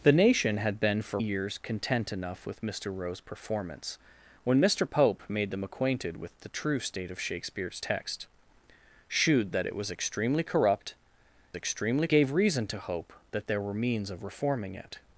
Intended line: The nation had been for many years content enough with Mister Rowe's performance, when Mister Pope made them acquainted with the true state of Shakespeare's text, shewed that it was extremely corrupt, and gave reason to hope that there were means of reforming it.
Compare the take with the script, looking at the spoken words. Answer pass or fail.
fail